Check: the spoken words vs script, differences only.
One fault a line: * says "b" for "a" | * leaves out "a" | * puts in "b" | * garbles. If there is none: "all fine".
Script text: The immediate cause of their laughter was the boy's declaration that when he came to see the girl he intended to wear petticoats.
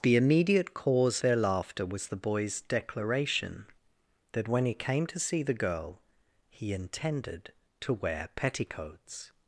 * leaves out "of"